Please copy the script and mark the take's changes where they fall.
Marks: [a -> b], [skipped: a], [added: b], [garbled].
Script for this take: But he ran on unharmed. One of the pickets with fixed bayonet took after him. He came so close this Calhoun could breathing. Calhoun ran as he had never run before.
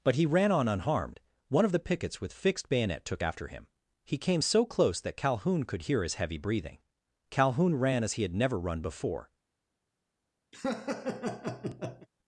But he ran on unharmed. One of the pickets with fixed bayonet took after him. He came so close [this -> that] Calhoun could [added: hear his heavy] breathing. Calhoun ran as he had never run before.